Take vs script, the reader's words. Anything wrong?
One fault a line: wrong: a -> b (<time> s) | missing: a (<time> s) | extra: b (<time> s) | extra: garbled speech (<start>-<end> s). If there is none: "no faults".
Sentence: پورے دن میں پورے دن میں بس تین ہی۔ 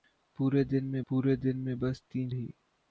no faults